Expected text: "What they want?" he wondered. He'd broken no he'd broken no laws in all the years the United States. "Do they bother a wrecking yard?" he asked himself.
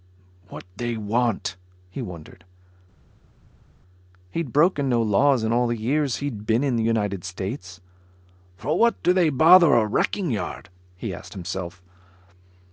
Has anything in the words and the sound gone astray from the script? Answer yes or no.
yes